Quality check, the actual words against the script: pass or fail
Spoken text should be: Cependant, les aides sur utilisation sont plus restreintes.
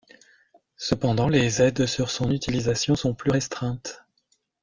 fail